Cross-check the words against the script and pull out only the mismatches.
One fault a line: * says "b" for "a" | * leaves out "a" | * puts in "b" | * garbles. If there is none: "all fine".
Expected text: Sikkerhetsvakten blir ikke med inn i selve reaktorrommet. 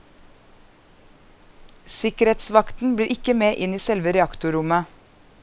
all fine